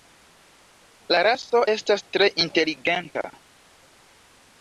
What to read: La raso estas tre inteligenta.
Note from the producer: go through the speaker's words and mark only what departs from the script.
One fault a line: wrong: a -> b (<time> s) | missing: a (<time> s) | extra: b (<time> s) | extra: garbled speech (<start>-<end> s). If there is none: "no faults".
no faults